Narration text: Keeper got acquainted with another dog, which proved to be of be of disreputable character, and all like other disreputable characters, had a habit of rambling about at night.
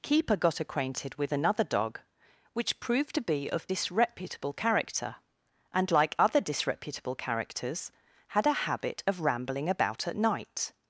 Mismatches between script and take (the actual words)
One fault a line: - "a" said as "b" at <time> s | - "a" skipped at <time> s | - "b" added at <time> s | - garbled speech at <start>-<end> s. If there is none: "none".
- "be of" skipped at 3.7 s
- "all" skipped at 5.9 s